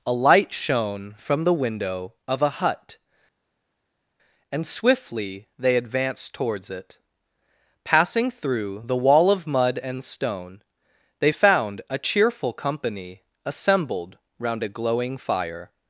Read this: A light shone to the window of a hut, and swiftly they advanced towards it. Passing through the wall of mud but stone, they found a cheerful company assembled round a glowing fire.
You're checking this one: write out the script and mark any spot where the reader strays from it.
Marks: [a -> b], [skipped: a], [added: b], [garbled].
A light shone [to -> from] the window of a hut, and swiftly they advanced towards it. Passing through the wall of mud [but -> and] stone, they found a cheerful company assembled round a glowing fire.